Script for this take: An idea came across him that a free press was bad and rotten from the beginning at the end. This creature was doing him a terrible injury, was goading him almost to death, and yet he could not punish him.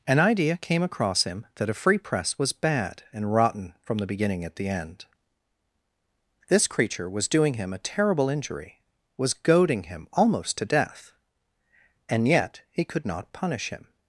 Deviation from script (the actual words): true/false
false